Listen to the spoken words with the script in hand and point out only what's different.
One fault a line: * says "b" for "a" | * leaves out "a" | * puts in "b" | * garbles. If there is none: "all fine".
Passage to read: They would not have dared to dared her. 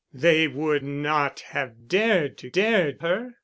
all fine